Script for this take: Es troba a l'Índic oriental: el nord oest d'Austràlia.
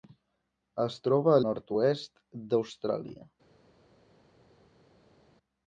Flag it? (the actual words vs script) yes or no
yes